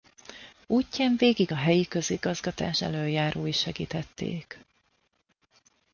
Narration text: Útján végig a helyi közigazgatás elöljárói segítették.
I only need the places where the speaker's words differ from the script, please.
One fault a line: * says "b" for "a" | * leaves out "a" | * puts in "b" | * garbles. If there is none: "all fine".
all fine